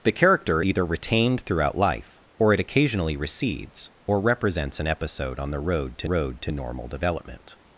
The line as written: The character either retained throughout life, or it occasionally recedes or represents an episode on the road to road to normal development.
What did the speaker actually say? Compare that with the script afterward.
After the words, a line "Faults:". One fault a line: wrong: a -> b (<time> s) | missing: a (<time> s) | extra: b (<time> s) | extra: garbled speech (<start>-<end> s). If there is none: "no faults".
The character either retained throughout life, or it occasionally recedes or represents an episode on the road to road to normal development.
Faults:
no faults